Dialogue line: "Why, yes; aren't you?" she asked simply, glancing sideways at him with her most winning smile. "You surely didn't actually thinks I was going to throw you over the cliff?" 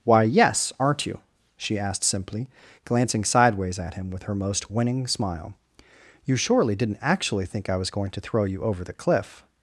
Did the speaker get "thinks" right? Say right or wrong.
wrong